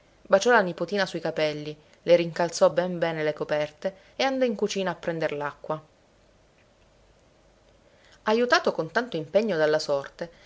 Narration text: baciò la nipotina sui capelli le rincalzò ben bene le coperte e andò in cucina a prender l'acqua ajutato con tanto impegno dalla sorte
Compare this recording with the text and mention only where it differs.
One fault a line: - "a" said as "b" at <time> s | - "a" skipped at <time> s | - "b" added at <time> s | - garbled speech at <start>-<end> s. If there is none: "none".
none